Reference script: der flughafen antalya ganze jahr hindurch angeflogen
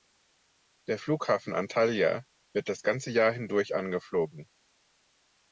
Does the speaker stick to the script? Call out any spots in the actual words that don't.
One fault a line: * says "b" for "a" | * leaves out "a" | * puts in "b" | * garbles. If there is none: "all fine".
* puts in "wird das"